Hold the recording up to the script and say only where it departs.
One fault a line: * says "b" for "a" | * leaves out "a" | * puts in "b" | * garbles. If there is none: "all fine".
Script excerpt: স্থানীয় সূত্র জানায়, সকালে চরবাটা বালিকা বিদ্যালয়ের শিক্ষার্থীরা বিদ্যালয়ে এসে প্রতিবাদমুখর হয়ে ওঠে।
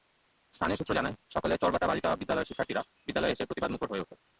all fine